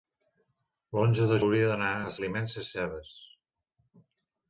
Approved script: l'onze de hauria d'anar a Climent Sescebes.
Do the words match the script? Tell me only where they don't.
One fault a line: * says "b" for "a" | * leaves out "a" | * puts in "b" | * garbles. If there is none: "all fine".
all fine